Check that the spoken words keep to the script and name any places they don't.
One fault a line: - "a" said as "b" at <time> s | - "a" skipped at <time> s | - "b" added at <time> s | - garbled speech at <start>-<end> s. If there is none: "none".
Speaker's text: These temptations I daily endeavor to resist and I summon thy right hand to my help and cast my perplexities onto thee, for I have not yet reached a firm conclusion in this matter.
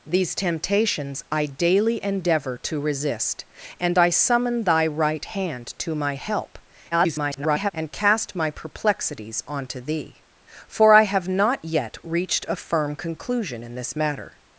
- garbled speech at 6.9-7.7 s